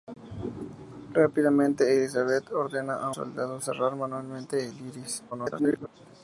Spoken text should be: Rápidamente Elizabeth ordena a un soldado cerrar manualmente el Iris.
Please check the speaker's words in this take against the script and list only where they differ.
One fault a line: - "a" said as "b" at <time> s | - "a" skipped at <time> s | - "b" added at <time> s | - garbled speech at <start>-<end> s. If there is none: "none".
- "un" skipped at 3.1 s
- garbled speech at 5.3-5.9 s